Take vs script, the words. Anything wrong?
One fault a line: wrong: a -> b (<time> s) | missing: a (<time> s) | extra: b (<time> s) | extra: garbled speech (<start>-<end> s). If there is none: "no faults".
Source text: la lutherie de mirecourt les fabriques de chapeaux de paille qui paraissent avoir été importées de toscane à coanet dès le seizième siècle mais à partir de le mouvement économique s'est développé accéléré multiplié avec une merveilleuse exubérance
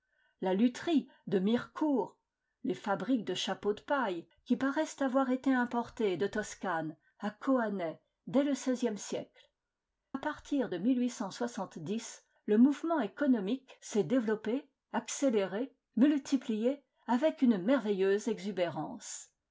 missing: mais (9.5 s)